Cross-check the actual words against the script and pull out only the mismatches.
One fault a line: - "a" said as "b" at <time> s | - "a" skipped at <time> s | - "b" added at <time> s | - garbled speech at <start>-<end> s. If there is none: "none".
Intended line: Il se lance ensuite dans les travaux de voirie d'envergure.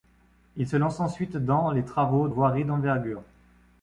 - "de" skipped at 2.3 s